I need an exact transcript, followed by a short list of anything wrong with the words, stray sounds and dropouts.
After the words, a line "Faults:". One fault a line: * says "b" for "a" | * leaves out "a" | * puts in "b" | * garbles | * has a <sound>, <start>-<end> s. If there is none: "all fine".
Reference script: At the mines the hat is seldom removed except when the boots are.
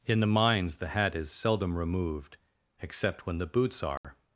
In the mines the hat is seldom removed except when the boots are.
Faults:
* says "In" for "At"
* has a dropout, 4.0-4.0 s